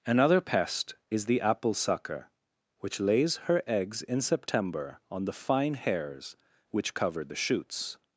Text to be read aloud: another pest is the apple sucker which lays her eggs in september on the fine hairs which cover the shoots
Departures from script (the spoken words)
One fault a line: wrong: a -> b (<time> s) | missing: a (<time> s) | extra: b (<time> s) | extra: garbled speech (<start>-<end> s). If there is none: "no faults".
no faults